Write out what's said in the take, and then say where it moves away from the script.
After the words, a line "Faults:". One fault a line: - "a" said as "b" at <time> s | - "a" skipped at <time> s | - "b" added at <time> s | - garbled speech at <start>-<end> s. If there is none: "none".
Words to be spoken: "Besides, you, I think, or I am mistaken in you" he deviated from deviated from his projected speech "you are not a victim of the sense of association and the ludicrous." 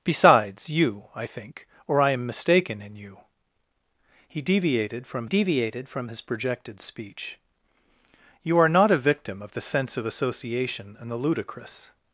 "Besides, you, I think, or I am mistaken in you" he deviated from deviated from his projected speech "you are not a victim of the sense of association and the ludicrous."
Faults:
none